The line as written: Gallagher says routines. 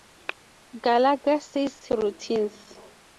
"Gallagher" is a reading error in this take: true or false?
false